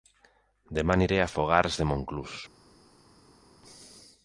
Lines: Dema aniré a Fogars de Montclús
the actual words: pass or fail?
pass